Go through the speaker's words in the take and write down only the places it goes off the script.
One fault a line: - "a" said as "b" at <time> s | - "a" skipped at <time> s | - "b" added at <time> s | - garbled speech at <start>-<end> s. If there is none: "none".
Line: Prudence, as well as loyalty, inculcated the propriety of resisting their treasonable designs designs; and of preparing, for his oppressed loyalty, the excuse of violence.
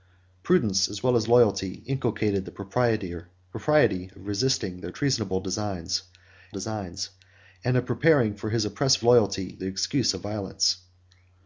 none